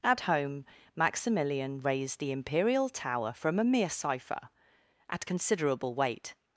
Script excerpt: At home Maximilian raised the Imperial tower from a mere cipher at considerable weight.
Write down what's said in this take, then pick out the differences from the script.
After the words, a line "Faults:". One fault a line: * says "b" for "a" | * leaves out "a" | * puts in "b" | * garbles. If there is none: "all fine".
At home Maximilian raised the Imperial tower from a mere cipher at considerable weight.
Faults:
all fine